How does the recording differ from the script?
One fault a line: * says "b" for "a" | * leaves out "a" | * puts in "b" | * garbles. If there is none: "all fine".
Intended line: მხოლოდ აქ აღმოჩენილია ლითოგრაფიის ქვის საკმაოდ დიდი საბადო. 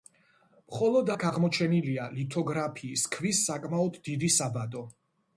all fine